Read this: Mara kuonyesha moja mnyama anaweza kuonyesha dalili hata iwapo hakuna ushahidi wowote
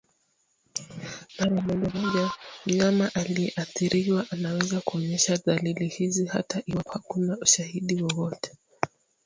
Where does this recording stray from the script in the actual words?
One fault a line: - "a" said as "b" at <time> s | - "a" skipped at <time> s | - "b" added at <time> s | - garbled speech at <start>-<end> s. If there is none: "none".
- "kuonyesha" said as "moja" at 1.6 s
- "aliyeathiriwa" added at 3.1 s
- "hizi" added at 5.9 s